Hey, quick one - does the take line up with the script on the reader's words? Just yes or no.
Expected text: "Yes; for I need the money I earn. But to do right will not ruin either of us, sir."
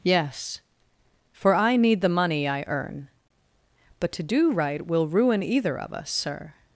no